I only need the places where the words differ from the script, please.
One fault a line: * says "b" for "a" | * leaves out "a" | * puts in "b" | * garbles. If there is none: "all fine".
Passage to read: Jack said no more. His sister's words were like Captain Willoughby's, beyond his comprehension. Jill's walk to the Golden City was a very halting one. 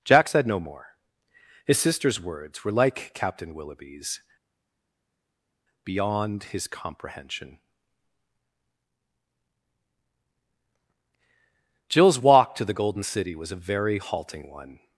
all fine